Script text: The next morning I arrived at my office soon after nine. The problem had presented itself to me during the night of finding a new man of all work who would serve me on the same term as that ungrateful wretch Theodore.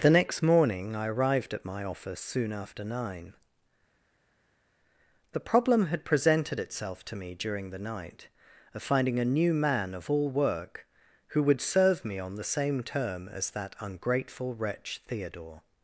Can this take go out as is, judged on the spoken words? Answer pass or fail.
pass